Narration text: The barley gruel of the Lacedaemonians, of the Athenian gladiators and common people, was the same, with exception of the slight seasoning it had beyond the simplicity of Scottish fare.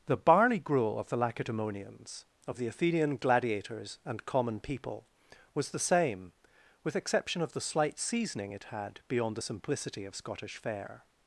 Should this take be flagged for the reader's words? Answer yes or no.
no